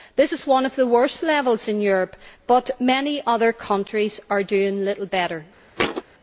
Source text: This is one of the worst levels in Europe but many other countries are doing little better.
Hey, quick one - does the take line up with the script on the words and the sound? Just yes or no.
no